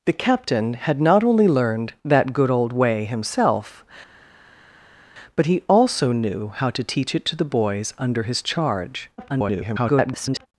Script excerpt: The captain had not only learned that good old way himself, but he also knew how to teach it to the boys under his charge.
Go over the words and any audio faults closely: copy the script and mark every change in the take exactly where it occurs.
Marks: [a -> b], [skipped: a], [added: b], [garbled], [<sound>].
The captain had not only learned that good old way himself, but he also knew how to teach it to the boys under his charge. [garbled]